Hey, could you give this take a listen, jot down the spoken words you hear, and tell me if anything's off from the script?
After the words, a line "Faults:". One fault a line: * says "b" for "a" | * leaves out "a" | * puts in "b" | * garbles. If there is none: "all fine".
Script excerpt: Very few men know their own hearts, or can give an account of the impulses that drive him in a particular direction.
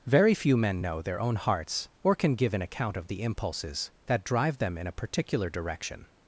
Very few men know their own hearts, or can give an account of the impulses that drive them in a particular direction.
Faults:
* says "them" for "him"